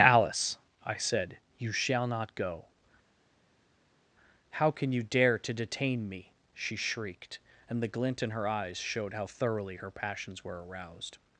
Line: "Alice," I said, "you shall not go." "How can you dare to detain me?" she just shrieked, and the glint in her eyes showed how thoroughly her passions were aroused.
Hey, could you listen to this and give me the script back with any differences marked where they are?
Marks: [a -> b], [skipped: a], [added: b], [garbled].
"Alice," I said, "you shall not go." "How can you dare to detain me?" she [skipped: just] shrieked, and the glint in her eyes showed how thoroughly her passions were aroused.